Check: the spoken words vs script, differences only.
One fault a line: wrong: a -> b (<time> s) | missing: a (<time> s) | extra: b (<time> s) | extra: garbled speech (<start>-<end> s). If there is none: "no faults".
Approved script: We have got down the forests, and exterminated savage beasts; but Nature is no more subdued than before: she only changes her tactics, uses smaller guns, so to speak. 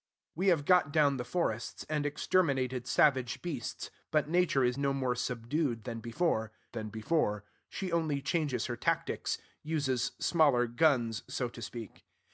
extra: than before (6.7 s)